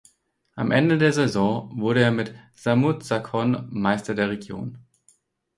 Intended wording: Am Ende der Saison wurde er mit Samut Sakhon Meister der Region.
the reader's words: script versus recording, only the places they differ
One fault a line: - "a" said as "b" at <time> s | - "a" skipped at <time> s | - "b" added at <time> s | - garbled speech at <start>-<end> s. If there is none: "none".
none